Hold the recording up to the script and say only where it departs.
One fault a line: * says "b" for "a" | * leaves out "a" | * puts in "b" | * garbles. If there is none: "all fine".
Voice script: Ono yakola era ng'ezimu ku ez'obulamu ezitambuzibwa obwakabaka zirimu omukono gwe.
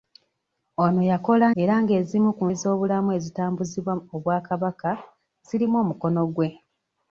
all fine